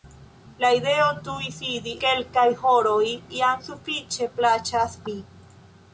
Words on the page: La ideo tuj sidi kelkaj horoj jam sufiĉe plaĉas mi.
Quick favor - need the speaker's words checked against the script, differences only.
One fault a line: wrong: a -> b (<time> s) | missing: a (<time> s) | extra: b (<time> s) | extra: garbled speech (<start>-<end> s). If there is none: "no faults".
no faults